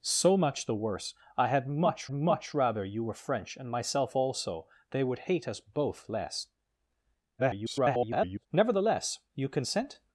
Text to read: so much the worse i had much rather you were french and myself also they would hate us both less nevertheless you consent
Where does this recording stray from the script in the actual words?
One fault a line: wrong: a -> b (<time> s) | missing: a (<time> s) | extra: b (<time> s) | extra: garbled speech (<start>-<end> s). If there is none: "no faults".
extra: much (2.1 s)
extra: garbled speech (7.4-8.5 s)